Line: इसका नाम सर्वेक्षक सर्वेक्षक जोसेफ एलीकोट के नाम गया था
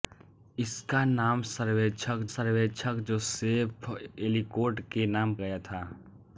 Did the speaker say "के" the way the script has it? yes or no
yes